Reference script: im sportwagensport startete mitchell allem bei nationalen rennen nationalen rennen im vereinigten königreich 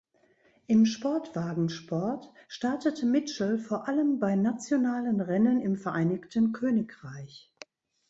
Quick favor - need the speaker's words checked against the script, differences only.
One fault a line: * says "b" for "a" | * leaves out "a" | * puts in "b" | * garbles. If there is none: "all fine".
* puts in "vor"
* leaves out "nationalen rennen"